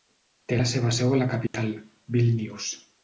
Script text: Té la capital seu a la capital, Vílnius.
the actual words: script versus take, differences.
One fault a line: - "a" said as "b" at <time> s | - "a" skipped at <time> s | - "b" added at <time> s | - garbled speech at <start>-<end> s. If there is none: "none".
- "capital" said as "seva" at 0.7 s